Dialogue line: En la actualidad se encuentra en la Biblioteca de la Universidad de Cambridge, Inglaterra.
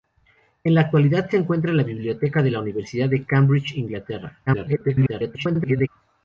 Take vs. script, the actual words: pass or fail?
fail